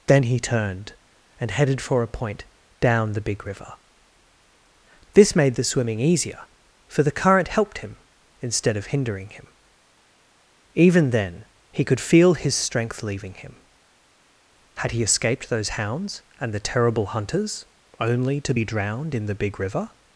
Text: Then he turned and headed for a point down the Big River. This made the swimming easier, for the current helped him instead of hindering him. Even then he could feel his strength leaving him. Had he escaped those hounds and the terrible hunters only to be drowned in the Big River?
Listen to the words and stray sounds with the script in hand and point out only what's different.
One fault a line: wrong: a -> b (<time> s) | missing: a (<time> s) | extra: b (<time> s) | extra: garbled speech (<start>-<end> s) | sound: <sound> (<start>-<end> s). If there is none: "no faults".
no faults